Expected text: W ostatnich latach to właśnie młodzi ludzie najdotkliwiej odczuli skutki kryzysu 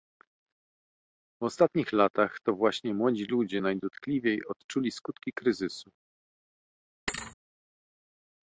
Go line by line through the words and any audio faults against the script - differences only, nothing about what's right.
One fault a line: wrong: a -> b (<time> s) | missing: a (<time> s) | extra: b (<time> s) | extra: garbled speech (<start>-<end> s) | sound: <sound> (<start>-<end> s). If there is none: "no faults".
sound: thud (7.1-7.4 s)